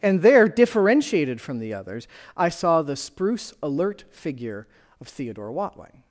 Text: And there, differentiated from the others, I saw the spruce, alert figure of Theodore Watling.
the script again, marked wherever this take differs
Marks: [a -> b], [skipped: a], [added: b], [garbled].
And there, differentiated from the others, I saw the spruce, alert figure of Theodore Watling.